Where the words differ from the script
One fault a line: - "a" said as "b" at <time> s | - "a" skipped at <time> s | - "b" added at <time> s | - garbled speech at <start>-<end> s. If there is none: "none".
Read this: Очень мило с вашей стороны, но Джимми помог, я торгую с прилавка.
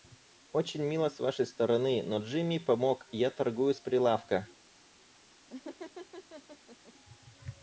none